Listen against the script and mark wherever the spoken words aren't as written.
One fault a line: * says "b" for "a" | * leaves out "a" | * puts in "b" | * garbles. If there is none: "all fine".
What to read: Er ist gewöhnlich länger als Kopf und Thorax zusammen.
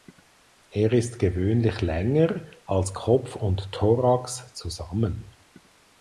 all fine